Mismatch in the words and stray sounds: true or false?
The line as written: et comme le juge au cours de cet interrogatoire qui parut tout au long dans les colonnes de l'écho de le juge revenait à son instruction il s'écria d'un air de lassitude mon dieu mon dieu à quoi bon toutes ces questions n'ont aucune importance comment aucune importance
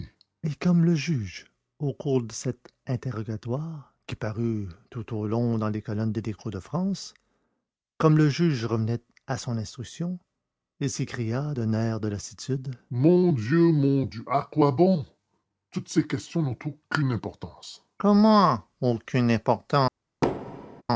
true